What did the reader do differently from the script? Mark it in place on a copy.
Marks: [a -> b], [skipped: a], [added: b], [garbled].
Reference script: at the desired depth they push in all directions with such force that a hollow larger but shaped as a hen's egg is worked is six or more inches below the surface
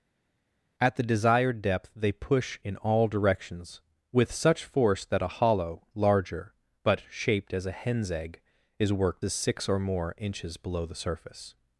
at the desired depth they push in all directions with such force that a hollow larger but shaped as a hen's egg is worked is six or more inches below the surface